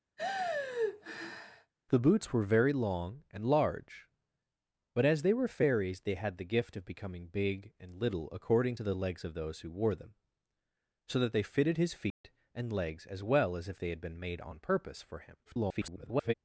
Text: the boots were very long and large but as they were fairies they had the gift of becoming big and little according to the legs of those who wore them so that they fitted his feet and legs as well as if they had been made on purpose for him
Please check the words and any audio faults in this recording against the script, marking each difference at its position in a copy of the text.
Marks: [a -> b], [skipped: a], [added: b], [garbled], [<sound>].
[sigh] the boots were very long and large but as they were fairies they had the gift of becoming big and little according to the legs of those who wore them so that they fitted his feet [dropout] and legs as well as if they had been made on purpose for him [garbled]